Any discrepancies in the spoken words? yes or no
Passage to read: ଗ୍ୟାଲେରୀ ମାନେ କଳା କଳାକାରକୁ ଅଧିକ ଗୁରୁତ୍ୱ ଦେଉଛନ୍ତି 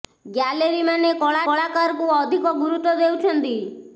no